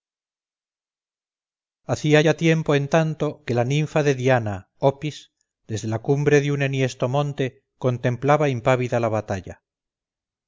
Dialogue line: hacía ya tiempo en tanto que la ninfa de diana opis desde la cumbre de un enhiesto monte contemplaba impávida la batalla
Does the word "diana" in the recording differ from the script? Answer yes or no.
no